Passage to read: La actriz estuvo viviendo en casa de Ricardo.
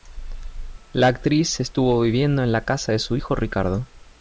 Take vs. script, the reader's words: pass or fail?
fail